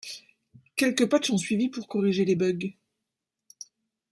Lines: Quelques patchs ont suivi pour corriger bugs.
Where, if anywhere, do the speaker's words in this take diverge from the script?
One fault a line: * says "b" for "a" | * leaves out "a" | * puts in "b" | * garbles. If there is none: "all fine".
* puts in "les"